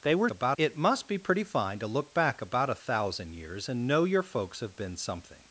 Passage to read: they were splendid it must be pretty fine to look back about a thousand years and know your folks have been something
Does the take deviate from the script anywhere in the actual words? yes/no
yes